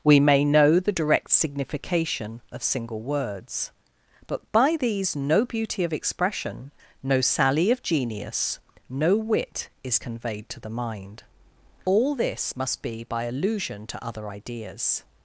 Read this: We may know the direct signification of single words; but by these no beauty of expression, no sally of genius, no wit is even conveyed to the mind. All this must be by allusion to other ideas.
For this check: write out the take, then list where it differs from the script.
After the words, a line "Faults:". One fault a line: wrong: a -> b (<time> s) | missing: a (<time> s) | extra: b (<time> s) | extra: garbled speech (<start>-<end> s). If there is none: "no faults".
We may know the direct signification of single words; but by these no beauty of expression, no sally of genius, no wit is conveyed to the mind. All this must be by allusion to other ideas.
Faults:
missing: even (10.0 s)